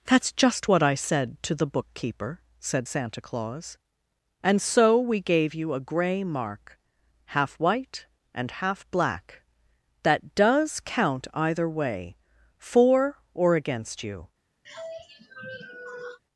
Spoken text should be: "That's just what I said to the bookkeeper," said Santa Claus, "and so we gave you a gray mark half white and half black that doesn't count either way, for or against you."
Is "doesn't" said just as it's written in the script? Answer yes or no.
no